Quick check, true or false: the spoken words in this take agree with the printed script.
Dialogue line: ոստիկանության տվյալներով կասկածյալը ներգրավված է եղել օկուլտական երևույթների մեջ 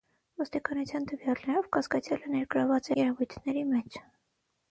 false